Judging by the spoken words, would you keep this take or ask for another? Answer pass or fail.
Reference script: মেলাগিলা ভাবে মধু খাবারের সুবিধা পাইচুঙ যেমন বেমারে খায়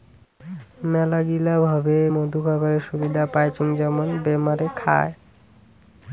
pass